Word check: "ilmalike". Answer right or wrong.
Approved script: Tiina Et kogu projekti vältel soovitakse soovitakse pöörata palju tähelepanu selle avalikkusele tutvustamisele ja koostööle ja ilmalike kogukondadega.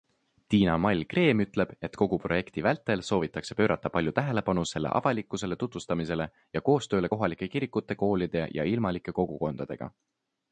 right